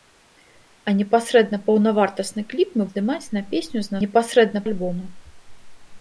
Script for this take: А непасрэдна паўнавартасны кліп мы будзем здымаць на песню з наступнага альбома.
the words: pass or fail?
fail